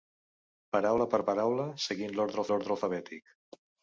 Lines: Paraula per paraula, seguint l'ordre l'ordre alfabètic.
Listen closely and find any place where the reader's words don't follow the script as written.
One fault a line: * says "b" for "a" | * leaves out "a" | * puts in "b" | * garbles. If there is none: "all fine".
all fine